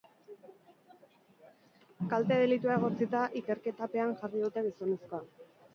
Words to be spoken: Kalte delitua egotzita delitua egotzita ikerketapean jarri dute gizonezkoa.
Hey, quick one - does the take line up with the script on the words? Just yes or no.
no